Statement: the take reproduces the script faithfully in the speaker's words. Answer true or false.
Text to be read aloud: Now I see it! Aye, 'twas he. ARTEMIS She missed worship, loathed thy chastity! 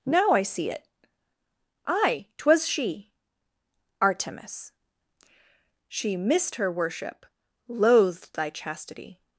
false